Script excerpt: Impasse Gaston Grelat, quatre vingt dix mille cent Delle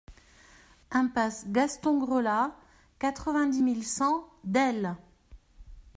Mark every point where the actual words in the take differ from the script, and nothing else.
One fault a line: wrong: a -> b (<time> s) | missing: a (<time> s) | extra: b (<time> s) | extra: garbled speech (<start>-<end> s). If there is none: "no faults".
no faults